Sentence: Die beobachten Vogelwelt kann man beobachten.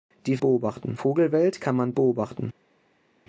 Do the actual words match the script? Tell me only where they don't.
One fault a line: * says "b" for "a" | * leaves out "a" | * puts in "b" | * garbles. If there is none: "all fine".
all fine